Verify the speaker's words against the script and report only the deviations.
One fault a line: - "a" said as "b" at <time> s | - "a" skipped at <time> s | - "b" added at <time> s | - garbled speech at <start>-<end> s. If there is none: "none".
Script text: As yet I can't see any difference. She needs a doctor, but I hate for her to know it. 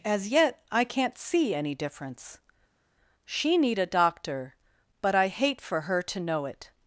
- "needs" said as "need" at 3.6 s